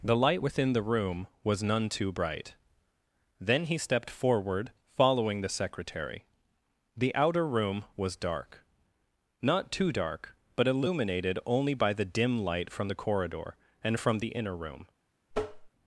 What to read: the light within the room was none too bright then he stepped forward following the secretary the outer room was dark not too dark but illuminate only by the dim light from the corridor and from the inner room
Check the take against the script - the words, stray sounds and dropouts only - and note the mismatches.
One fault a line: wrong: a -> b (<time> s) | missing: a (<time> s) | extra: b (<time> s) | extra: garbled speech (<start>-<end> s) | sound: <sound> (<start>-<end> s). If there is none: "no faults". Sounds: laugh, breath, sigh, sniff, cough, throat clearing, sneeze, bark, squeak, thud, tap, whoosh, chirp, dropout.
wrong: illuminate -> illuminated (10.7 s)
sound: tap (15.3-15.7 s)